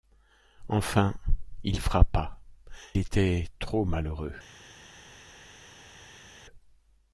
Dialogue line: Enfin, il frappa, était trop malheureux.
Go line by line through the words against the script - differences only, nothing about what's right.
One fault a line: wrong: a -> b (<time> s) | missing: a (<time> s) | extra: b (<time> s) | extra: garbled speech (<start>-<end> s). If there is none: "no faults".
no faults